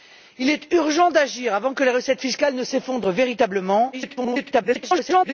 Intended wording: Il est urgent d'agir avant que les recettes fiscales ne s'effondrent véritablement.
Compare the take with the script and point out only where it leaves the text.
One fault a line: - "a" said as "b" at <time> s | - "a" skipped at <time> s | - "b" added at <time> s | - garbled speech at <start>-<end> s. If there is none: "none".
- garbled speech at 3.9-5.3 s